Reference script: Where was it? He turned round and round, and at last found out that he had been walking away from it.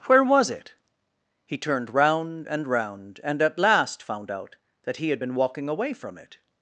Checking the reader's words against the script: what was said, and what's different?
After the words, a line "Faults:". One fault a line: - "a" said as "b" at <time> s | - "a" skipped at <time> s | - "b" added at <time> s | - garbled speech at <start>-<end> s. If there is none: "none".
Where was it? He turned round and round, and at last found out that he had been walking away from it.
Faults:
none